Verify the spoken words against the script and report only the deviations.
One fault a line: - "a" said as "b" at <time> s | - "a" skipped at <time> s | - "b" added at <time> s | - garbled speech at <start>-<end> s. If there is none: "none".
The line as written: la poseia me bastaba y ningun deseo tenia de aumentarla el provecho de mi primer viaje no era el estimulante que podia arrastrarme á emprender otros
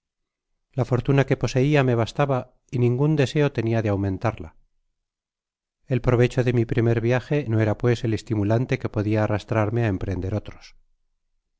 - "fortuna que" added at 0.9 s
- "pues" added at 7.8 s